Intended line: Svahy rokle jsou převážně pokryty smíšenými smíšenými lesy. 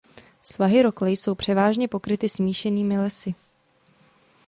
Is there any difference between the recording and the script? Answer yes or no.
yes